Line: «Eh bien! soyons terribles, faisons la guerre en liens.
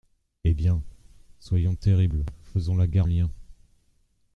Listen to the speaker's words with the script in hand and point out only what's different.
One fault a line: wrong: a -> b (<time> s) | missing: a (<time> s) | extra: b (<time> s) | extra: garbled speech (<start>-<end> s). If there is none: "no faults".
missing: en (3.1 s)